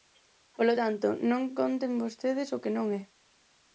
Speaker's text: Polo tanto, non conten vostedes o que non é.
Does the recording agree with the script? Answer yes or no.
yes